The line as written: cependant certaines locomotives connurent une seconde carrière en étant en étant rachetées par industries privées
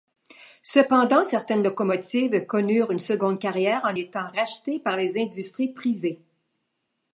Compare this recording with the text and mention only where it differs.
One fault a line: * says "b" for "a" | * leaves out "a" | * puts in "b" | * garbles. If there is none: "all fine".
* leaves out "en étant"
* puts in "les"